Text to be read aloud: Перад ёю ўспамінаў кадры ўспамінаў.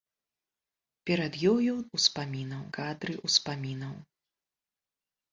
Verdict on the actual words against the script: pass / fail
pass